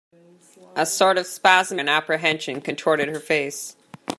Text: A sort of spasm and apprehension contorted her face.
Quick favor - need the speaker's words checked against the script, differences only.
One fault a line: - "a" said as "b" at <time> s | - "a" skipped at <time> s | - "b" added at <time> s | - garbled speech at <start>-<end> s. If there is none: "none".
none